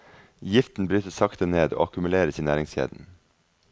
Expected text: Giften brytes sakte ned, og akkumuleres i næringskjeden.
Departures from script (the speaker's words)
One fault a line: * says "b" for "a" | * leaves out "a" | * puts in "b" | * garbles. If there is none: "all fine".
all fine